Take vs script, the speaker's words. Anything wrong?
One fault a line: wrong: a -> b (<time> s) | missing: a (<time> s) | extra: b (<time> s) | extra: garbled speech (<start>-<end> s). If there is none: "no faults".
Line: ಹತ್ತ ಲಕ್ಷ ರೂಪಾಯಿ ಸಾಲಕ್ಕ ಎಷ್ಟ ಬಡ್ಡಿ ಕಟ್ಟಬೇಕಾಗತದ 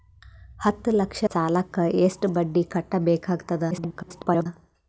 missing: ರೂಪಾಯಿ (1.2 s)
extra: garbled speech (3.7-4.5 s)